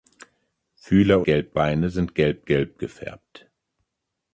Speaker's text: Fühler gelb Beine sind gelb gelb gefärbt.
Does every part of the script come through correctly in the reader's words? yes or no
yes